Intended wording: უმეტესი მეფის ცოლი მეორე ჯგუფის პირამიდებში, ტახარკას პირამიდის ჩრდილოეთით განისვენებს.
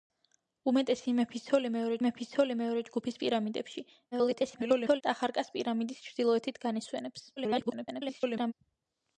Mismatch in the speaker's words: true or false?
true